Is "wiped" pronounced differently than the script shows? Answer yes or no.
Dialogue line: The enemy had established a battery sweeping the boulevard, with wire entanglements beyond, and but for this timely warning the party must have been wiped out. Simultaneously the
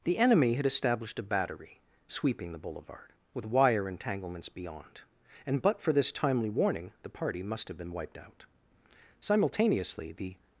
no